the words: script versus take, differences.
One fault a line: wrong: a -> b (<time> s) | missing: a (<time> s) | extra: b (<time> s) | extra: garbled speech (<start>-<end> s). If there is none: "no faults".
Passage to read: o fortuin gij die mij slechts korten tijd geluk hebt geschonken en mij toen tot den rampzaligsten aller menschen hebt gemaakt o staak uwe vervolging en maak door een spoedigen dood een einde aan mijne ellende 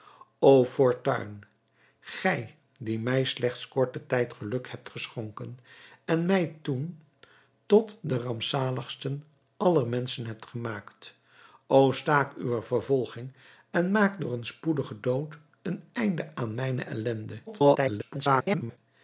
extra: garbled speech (17.5-18.8 s)